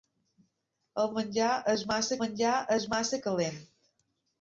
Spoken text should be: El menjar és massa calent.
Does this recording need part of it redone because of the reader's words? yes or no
yes